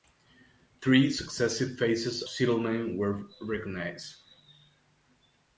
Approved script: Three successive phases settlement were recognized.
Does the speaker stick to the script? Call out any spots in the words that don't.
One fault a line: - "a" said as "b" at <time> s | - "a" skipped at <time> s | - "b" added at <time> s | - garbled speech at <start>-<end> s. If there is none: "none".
none